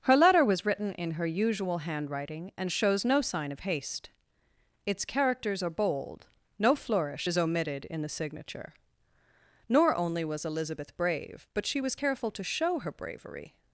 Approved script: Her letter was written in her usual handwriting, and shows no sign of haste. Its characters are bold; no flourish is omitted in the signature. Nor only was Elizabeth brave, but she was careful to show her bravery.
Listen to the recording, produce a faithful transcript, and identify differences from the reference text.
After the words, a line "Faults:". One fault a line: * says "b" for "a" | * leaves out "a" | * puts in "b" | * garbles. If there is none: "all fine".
Her letter was written in her usual handwriting, and shows no sign of haste. Its characters are bold; no flourish is omitted in the signature. Nor only was Elizabeth brave, but she was careful to show her bravery.
Faults:
all fine